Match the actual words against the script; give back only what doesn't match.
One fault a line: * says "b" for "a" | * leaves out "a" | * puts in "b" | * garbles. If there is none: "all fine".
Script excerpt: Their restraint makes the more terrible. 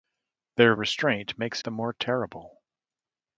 all fine